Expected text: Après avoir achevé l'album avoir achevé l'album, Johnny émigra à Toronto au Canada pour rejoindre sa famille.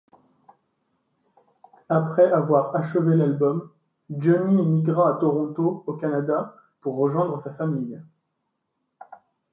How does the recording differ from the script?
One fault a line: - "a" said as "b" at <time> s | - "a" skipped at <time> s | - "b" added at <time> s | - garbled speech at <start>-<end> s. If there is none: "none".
- "avoir achevé l'album" skipped at 3.7 s